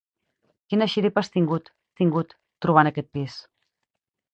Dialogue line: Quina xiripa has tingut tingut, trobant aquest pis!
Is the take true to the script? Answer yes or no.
yes